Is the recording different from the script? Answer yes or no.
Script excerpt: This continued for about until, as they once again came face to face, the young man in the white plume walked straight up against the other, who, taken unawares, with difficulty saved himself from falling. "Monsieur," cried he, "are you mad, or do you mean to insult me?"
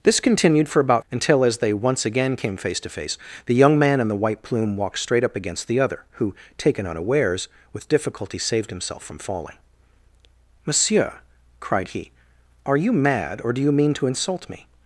no